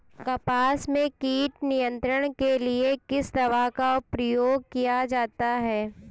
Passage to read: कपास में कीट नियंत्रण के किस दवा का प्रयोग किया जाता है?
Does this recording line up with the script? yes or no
no